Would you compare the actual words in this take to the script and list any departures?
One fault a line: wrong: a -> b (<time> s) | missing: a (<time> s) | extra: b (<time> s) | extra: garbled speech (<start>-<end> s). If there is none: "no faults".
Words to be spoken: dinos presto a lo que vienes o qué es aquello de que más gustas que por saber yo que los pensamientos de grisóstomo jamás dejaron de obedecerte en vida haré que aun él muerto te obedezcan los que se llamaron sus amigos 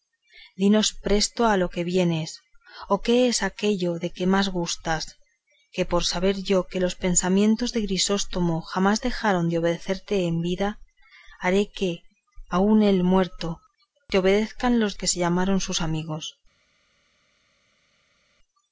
no faults